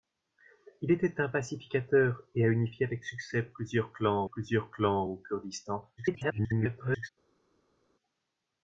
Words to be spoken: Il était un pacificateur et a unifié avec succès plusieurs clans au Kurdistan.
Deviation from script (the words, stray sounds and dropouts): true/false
true